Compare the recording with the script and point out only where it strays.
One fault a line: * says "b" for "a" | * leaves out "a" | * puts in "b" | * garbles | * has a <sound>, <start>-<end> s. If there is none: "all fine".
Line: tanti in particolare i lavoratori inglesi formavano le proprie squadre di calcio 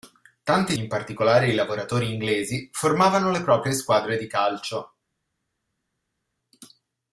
all fine